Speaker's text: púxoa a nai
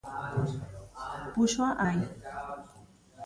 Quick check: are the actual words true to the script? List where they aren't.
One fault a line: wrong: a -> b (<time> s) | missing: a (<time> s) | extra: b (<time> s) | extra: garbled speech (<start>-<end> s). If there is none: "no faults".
no faults